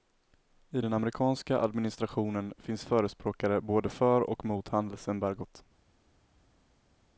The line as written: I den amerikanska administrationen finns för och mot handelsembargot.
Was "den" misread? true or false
false